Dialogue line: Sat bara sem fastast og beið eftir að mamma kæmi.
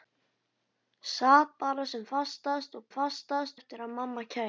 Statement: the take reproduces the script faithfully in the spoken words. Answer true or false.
false